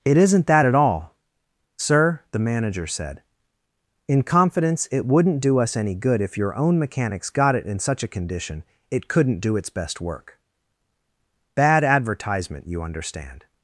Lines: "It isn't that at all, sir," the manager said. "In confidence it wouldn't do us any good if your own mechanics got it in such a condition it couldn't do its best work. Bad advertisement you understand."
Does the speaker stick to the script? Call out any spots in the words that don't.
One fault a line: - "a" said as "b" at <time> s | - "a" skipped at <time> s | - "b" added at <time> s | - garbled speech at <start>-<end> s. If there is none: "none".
none